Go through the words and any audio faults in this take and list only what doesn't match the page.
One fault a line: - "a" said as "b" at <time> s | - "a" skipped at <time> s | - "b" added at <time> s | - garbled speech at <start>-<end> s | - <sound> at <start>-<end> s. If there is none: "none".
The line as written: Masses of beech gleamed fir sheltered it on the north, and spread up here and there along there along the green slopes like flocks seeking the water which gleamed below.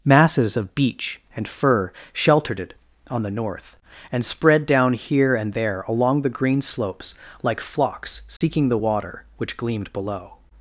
- "gleamed" said as "and" at 1.3 s
- "up" said as "down" at 4.6 s
- "there along" skipped at 6.2 s
- dropout at 8.4-8.4 s